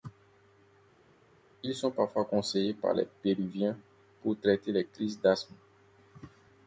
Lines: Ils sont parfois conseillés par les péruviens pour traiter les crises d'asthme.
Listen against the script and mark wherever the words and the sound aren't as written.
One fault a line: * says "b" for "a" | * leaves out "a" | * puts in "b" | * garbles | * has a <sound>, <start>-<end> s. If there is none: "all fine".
all fine